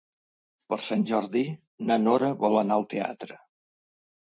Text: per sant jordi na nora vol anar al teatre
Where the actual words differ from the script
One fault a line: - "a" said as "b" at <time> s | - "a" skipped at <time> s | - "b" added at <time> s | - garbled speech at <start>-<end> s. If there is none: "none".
none